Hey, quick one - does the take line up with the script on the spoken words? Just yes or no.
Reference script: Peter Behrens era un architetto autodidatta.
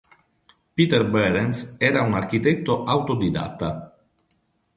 yes